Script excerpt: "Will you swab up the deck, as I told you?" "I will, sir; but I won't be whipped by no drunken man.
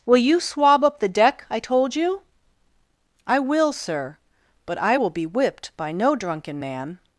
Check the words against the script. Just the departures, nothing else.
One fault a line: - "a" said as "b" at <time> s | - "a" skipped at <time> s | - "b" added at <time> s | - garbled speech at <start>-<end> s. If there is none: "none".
- "as" skipped at 1.4 s
- "won't" said as "will" at 4.9 s